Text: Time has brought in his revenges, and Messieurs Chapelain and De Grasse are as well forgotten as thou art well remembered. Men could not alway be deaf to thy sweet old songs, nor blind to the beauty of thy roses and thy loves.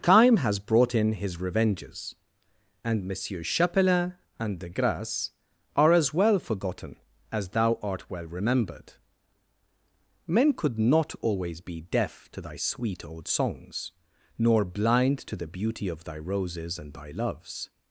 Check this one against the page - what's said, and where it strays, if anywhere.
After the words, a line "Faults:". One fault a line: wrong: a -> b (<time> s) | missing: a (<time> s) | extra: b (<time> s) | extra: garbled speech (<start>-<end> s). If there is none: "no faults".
Time has brought in his revenges, and Messieurs Chapelain and De Grasse are as well forgotten as thou art well remembered. Men could not always be deaf to thy sweet old songs, nor blind to the beauty of thy roses and thy loves.
Faults:
wrong: alway -> always (11.2 s)